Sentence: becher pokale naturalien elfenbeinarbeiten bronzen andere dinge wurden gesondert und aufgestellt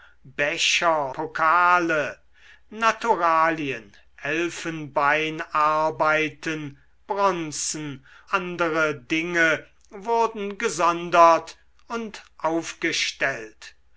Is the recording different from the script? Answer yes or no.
no